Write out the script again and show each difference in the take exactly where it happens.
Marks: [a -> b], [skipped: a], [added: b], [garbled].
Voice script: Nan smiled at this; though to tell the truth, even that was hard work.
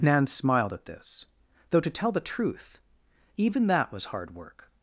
Nan smiled at this; though to tell the truth, even that was hard work.